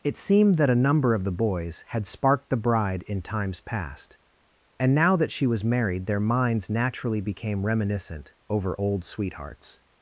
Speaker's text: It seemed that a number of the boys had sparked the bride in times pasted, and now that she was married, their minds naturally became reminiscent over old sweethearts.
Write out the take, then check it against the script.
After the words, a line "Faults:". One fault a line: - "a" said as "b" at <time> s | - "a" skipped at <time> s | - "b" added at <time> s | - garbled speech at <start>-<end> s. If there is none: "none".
It seemed that a number of the boys had sparked the bride in times past, and now that she was married, their minds naturally became reminiscent over old sweethearts.
Faults:
- "pasted" said as "past" at 3.6 s